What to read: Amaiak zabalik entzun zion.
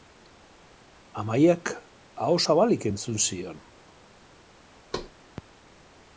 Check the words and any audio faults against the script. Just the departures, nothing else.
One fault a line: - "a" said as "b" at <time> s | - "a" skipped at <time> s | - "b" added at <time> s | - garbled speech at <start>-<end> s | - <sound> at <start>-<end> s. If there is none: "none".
- "aho" added at 2.3 s
- thud at 4.9-5.1 s